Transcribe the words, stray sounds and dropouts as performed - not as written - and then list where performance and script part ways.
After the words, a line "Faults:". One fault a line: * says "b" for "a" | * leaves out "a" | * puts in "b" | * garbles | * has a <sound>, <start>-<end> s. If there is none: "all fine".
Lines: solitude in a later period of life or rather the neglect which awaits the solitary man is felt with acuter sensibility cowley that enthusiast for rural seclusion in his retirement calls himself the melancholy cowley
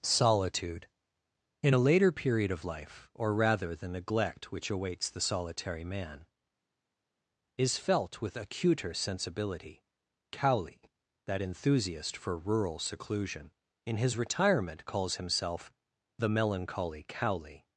solitude in a later period of life or rather the neglect which awaits the solitary man is felt with acuter sensibility cowley that enthusiast for rural seclusion in his retirement calls himself the melancholy cowley
Faults:
all fine